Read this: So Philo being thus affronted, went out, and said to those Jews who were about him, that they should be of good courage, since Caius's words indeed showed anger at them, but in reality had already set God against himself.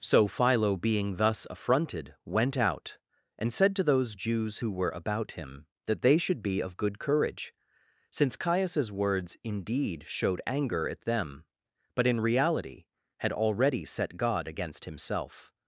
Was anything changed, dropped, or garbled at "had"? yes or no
no